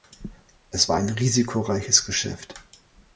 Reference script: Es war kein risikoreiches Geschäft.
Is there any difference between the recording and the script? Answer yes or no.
yes